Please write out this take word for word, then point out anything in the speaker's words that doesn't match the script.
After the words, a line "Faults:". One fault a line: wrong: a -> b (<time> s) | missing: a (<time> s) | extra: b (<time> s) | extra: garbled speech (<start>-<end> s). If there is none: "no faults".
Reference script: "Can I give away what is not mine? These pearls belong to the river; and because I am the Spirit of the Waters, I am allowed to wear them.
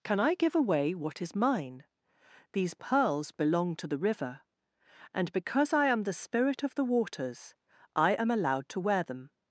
"Can I give away what is mine? These pearls belong to the river; and because I am the Spirit of the Waters, I am allowed to wear them.
Faults:
missing: not (1.4 s)